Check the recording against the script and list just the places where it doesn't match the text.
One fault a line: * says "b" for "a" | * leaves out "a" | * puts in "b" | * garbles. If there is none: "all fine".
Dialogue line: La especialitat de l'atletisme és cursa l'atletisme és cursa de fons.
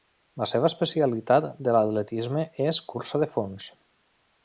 * puts in "seva"
* leaves out "l'atletisme és cursa"